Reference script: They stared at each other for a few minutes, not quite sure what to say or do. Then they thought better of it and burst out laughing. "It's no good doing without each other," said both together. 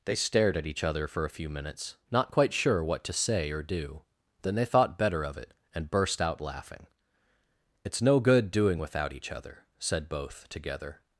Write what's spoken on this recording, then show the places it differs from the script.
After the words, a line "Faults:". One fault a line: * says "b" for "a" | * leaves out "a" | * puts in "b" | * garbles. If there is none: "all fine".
They stared at each other for a few minutes, not quite sure what to say or do. Then they thought better of it and burst out laughing. "It's no good doing without each other," said both together.
Faults:
all fine